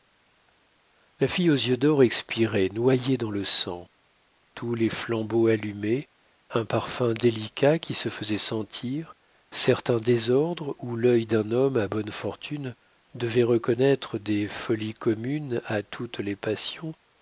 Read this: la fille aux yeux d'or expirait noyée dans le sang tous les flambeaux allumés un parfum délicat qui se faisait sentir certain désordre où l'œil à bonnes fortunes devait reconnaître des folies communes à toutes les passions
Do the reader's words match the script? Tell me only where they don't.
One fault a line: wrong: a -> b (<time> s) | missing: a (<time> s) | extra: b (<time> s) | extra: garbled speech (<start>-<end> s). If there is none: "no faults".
extra: d'un homme (11.3 s)